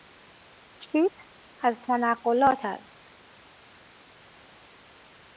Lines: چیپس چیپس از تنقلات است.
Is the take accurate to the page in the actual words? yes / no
no